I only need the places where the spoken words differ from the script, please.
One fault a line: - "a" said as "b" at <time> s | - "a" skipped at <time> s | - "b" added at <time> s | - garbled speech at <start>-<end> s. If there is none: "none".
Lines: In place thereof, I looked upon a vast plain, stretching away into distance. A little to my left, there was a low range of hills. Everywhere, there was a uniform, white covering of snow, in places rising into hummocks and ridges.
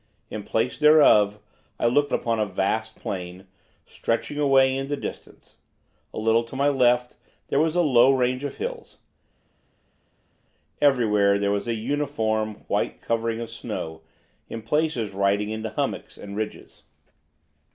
none